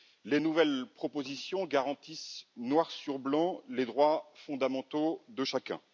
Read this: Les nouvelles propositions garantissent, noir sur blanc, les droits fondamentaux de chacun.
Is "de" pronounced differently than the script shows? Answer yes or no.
no